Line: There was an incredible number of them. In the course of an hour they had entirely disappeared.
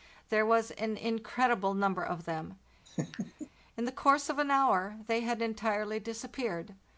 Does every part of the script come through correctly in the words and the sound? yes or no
no